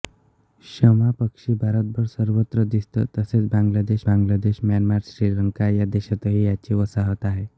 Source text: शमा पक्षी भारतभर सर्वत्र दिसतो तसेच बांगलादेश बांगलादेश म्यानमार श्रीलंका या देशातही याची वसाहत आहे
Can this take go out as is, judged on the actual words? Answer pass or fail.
pass